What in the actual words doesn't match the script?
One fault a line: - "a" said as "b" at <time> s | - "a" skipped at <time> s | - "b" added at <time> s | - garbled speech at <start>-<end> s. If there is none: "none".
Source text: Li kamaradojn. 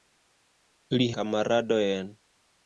none